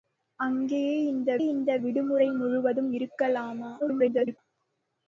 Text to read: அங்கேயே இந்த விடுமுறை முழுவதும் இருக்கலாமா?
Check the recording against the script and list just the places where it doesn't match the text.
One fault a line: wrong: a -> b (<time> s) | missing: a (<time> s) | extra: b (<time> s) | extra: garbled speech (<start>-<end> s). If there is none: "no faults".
extra: இந்த (1.5 s)
extra: garbled speech (3.8-4.4 s)